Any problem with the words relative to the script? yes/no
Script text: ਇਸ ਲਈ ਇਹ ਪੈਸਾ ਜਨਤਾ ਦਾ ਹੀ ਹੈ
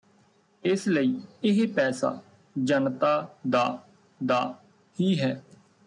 yes